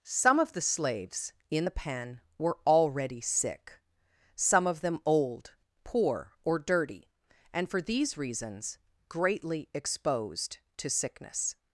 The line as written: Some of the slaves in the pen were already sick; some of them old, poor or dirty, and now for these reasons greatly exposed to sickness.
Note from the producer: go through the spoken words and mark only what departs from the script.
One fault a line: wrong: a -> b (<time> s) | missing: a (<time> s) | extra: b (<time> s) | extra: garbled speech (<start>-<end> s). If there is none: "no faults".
missing: now (7.7 s)